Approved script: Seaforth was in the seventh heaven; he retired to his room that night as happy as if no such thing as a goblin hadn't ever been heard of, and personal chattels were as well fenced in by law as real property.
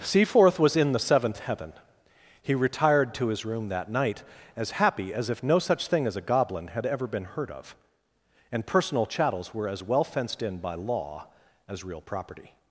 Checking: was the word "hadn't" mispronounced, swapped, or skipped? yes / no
yes